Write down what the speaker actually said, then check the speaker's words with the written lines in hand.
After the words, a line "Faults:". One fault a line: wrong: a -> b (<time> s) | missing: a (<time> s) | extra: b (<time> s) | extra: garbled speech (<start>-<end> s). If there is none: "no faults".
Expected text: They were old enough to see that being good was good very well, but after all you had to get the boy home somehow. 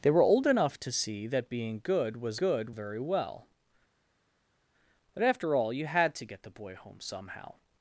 They were old enough to see that being good was good very well, but after all you had to get the boy home somehow.
Faults:
no faults